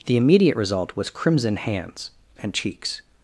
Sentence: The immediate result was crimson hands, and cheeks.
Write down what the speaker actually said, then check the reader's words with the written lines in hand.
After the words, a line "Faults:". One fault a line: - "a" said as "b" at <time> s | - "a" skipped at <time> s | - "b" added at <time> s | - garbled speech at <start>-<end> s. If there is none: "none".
The immediate result was crimson hands, and cheeks.
Faults:
none